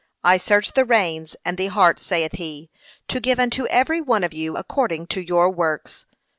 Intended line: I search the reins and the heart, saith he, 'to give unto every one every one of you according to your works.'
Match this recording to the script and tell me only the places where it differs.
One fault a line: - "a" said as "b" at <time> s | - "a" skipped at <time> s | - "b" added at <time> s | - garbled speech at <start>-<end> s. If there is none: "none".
- "every one" skipped at 4.2 s